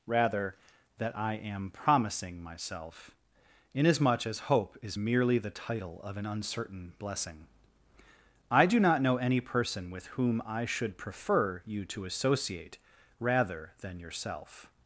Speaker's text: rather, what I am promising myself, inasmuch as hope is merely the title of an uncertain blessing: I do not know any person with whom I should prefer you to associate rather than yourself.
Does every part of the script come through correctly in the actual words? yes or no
no